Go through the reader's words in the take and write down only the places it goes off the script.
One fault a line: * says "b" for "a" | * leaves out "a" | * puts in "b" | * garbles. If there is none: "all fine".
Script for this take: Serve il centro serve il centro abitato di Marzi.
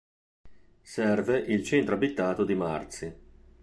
* leaves out "serve il centro"